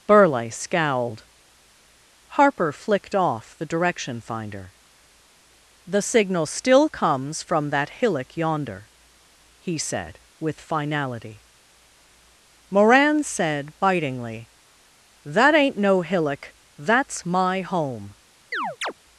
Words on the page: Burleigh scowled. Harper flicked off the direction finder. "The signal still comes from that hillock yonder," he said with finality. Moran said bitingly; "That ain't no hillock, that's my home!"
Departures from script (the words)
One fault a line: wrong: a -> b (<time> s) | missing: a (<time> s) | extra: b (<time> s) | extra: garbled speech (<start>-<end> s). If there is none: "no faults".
no faults